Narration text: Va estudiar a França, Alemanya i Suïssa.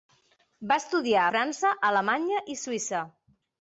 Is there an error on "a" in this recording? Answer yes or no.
yes